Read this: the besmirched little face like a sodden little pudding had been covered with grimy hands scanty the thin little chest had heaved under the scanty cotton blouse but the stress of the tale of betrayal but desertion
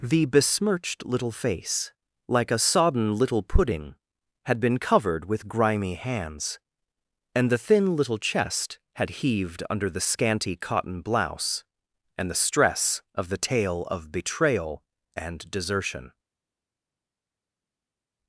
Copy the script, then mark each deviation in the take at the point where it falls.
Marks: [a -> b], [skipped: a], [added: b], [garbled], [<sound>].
the besmirched little face like a sodden little pudding had been covered with grimy hands [scanty -> and] the thin little chest had heaved under the scanty cotton blouse [but -> and] the stress of the tale of betrayal [but -> and] desertion